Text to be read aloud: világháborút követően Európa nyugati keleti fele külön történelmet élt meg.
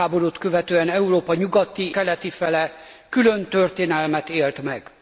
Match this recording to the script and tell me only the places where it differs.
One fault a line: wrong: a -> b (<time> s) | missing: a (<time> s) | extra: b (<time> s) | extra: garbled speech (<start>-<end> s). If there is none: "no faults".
no faults